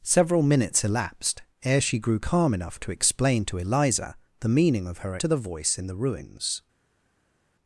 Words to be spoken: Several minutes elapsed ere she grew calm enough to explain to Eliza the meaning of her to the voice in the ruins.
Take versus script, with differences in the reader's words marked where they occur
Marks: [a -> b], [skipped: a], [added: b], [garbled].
Several minutes elapsed ere she grew calm enough to explain to Eliza the meaning of her to the voice in the ruins.